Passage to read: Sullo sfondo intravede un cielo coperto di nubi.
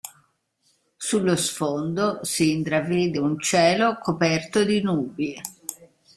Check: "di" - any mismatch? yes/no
no